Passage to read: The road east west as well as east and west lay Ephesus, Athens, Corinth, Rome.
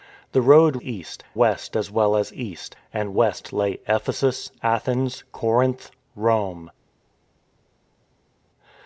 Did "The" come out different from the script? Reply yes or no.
no